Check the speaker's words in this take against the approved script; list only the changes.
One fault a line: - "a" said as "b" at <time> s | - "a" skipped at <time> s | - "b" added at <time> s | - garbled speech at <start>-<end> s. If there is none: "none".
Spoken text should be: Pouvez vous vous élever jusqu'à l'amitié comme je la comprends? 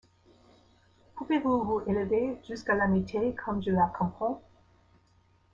none